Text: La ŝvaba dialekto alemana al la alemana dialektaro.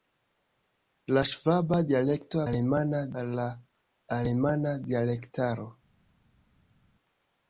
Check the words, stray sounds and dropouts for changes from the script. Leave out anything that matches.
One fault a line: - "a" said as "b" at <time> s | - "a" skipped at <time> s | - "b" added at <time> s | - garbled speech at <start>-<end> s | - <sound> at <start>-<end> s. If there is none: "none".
none